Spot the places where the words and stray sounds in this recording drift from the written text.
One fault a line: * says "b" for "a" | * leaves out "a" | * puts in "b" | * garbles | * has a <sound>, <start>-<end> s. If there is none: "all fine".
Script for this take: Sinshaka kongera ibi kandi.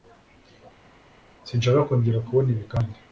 * puts in "kubona"